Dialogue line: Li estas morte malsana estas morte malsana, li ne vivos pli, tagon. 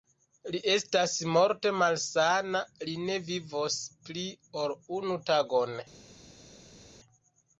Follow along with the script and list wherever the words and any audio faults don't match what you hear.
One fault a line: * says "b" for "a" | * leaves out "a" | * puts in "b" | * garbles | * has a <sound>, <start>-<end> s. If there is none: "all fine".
* leaves out "estas morte malsana"
* puts in "ol unu"